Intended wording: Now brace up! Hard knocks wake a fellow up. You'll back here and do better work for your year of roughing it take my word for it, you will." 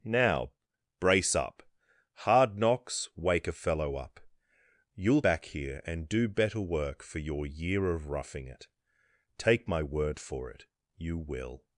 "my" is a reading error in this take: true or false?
false